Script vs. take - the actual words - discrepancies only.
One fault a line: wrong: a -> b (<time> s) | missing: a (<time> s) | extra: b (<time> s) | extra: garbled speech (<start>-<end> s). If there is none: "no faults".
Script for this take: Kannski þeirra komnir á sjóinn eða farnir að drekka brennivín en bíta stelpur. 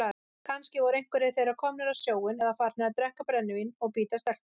extra: voru einhverjir (0.8 s)
wrong: en -> og (3.8 s)